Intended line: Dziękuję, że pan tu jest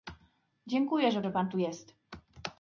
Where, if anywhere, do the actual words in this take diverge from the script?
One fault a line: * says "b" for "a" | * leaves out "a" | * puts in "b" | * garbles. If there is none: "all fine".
* puts in "że"